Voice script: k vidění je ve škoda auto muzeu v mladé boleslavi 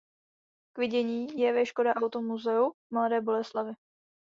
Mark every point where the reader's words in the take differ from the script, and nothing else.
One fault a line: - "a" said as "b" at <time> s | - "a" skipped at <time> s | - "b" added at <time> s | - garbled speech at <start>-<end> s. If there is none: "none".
none